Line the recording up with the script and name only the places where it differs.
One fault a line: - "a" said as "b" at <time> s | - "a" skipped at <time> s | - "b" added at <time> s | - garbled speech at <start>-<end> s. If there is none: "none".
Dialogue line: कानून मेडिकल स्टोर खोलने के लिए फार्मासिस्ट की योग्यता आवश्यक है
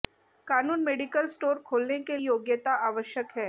- "लिए फार्मासिस्ट की" skipped at 2.2 s